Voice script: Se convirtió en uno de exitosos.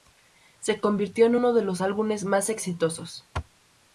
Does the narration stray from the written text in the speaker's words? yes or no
yes